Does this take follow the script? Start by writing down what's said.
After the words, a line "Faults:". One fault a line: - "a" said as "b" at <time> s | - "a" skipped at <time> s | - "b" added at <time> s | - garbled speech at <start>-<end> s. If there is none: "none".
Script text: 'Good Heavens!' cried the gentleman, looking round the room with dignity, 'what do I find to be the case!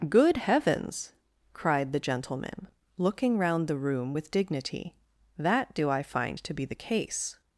'Good Heavens!' cried the gentleman, looking round the room with dignity, 'that do I find to be the case!
Faults:
- "what" said as "that" at 5.4 s